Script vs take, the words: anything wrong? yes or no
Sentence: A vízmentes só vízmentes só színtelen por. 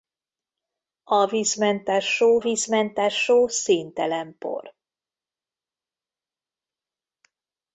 no